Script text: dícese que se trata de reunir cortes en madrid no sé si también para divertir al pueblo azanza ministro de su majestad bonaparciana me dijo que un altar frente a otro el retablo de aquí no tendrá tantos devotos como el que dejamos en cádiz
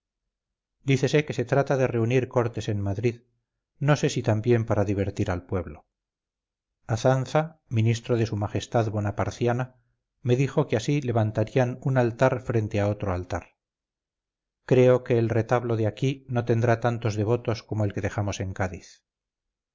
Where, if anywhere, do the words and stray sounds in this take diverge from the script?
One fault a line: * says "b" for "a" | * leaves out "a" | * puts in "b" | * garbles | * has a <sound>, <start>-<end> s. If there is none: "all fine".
* puts in "así levantarían"
* puts in "altar creo que"